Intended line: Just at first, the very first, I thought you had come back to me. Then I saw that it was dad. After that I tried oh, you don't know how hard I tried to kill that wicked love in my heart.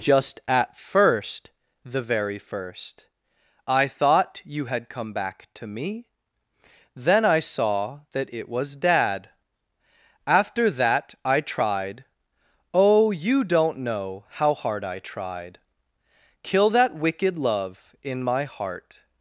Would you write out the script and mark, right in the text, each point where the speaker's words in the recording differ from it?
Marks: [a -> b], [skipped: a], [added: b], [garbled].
Just at first, the very first, I thought you had come back to me. Then I saw that it was dad. After that I tried oh, you don't know how hard I tried [skipped: to] kill that wicked love in my heart.